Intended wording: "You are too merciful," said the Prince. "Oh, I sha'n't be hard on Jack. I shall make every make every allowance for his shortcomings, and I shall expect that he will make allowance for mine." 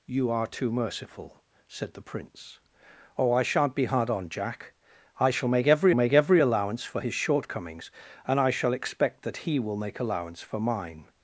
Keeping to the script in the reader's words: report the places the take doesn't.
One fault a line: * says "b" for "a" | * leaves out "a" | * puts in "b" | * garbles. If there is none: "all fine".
all fine